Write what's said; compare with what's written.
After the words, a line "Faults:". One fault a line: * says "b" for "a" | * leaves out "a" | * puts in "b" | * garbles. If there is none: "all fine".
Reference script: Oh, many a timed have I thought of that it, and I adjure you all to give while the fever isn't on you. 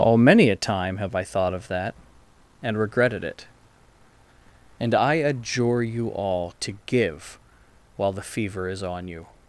Oh, many a time have I thought of that and regretted it, and I adjure you all to give while the fever is on you.
Faults:
* says "time" for "timed"
* puts in "and regretted"
* says "is" for "isn't"